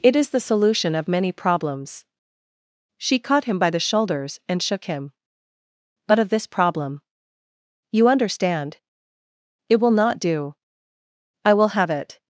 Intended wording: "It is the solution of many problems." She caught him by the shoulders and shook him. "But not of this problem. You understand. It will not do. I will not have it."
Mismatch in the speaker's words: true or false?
true